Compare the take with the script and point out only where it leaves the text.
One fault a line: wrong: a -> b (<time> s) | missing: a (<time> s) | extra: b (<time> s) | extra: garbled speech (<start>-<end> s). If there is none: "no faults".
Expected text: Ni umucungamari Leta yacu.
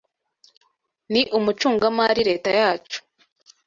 no faults